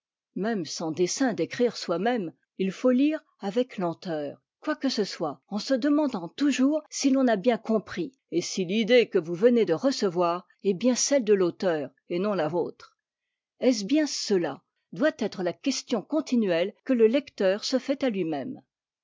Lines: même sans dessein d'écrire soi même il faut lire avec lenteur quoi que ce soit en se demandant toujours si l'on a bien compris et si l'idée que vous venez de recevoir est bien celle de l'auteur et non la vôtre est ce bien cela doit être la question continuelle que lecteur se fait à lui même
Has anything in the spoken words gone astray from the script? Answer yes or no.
yes